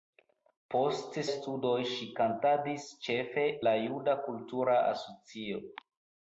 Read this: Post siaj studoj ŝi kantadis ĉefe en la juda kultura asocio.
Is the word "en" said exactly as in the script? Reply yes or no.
no